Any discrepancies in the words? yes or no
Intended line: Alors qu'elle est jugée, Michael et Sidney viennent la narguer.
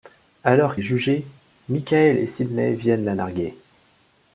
yes